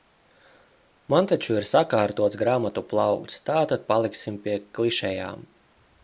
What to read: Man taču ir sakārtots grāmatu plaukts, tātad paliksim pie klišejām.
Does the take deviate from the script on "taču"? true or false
false